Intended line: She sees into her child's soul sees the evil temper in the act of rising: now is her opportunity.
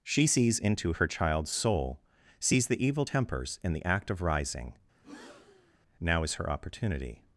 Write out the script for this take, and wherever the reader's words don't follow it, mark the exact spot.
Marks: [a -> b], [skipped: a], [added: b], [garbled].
She sees into her child's soul sees the evil [temper -> tempers] in the act of rising: now is her opportunity.